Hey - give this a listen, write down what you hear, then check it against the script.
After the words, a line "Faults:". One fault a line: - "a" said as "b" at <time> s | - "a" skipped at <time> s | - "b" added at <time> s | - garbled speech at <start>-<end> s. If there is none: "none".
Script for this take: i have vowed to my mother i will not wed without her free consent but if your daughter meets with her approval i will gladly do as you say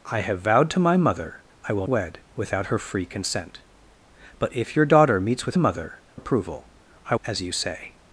i have vowed to my mother i will wed without her free consent but if your daughter meets with mother approval i as you say
Faults:
- "not" skipped at 1.9 s
- "her" said as "mother" at 5.6 s
- "will gladly do" skipped at 7.1 s